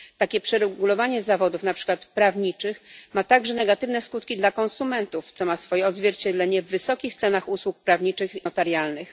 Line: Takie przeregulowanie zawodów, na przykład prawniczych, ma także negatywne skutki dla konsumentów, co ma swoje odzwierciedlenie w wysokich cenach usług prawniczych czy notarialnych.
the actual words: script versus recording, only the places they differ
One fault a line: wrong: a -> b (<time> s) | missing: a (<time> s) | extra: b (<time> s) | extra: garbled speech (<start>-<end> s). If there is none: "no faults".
missing: czy (8.4 s)